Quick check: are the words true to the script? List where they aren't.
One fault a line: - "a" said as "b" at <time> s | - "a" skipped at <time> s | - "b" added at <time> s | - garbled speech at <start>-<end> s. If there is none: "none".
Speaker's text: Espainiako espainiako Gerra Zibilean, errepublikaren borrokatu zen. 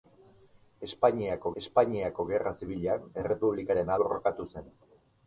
none